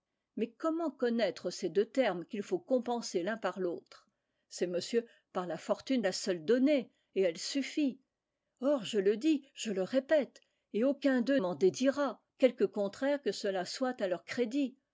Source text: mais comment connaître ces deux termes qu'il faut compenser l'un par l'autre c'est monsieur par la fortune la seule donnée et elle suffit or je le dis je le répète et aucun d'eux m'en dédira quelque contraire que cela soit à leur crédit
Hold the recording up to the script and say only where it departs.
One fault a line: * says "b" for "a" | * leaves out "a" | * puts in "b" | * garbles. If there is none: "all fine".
all fine